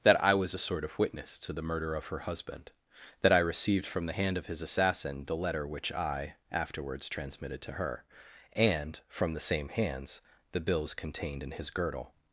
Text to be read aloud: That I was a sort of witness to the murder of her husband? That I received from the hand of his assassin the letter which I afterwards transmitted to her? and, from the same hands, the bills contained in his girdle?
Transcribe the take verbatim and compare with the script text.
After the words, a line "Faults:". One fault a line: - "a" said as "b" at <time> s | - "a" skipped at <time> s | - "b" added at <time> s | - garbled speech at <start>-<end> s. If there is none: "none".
That I was a sort of witness to the murder of her husband? That I received from the hand of his assassin the letter which I afterwards transmitted to her? and, from the same hands, the bills contained in his girdle?
Faults:
none